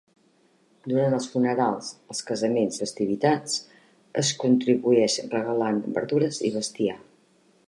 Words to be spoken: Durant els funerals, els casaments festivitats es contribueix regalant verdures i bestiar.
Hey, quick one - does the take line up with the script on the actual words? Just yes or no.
yes